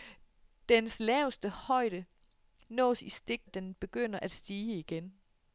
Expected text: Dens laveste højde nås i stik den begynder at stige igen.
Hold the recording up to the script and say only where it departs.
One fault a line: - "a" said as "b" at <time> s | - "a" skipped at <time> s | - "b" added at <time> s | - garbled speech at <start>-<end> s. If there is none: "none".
none